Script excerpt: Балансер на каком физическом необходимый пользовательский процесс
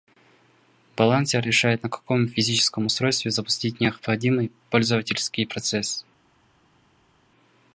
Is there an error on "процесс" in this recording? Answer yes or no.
no